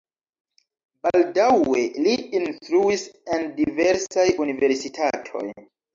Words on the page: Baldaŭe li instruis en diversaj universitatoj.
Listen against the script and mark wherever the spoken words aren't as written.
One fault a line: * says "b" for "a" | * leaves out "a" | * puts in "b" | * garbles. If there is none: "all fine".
all fine